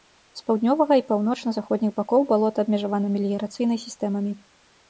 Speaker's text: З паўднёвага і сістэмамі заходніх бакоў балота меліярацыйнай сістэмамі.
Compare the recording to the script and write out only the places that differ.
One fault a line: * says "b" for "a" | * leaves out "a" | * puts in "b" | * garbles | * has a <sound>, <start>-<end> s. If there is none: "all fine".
* says "паўночна" for "сістэмамі"
* puts in "абмежавана"